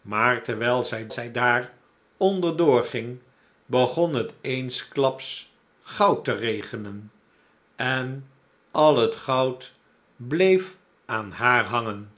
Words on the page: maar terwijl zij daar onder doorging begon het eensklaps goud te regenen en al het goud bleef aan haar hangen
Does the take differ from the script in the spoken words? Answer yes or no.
yes